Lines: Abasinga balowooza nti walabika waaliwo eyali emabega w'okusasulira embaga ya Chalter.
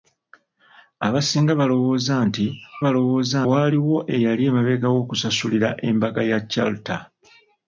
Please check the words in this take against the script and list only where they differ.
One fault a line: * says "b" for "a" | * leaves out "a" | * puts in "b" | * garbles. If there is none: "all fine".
* says "balowooza" for "walabika"